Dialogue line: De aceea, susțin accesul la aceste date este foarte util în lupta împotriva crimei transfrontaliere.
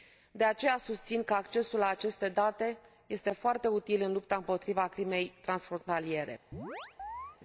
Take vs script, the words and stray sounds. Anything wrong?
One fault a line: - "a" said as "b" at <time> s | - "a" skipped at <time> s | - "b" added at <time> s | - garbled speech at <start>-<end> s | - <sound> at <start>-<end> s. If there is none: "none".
- "că" added at 1.2 s
- chirp at 6.5-7.4 s